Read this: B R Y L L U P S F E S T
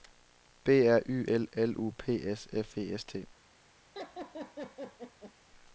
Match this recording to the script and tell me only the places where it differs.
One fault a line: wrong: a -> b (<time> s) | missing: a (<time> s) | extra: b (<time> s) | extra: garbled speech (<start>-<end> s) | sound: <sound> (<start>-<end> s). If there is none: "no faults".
sound: laugh (3.9-5.3 s)